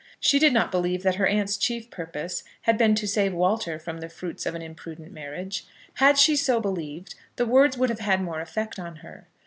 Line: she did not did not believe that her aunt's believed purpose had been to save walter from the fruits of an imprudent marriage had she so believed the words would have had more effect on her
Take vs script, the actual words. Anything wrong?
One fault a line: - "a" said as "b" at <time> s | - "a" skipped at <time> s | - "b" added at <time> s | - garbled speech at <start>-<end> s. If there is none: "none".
- "did not" skipped at 0.7 s
- "believed" said as "chief" at 1.6 s